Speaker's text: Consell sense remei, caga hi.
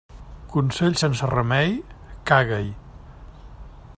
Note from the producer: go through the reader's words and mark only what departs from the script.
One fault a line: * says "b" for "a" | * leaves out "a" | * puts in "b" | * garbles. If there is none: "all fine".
all fine